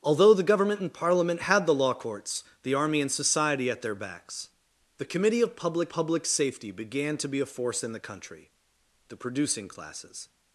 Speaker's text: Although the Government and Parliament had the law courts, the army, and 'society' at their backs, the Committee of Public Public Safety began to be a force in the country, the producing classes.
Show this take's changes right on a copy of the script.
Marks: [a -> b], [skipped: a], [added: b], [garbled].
Although the Government and Parliament had the law courts, the army, and 'society' at their backs, the Committee of Public Public Safety began to be a force in the country, the producing classes.